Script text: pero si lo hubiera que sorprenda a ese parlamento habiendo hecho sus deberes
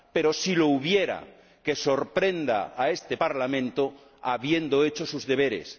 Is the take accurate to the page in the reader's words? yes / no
no